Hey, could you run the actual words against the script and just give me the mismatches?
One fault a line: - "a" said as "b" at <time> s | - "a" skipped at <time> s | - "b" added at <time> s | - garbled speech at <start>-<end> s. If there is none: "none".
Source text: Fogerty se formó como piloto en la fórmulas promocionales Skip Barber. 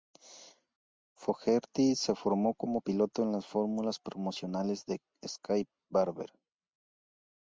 - "la" said as "las" at 3.3 s
- "de" added at 4.8 s